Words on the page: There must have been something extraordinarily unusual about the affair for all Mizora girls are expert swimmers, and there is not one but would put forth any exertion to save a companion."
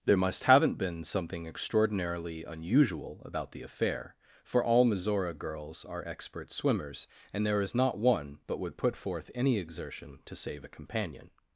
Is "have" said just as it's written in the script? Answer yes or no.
no